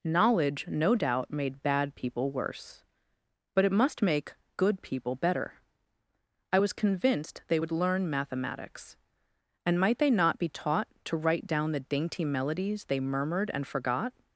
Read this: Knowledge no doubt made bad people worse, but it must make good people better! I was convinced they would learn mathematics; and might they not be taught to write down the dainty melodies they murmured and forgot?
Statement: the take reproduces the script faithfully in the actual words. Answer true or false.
true